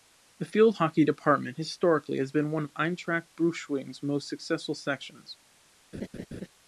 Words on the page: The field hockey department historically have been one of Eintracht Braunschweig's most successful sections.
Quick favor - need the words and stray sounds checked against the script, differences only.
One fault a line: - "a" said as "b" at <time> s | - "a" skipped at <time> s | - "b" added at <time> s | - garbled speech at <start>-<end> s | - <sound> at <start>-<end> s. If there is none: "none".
- "have" said as "has" at 2.2 s
- laugh at 5.9-6.5 s